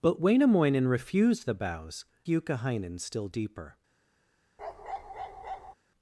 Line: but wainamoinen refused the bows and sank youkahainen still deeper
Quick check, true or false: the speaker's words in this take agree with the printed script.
false